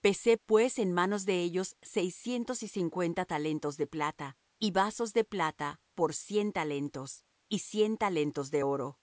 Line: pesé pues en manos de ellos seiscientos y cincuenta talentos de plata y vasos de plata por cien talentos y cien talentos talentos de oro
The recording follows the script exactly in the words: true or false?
false